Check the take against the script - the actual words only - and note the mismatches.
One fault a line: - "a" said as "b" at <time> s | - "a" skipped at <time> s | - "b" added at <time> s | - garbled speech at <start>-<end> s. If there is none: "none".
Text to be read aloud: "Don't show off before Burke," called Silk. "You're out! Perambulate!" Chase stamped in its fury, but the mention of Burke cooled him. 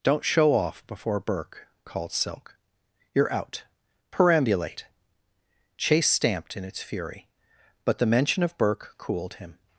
none